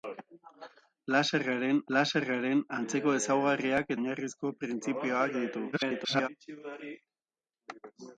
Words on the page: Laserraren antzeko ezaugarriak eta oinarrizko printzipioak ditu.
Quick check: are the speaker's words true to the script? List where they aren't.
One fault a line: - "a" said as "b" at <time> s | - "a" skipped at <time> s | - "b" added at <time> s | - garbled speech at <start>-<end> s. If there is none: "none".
- "laserraren" added at 2.0 s
- "eta" skipped at 3.9 s
- garbled speech at 5.7-6.3 s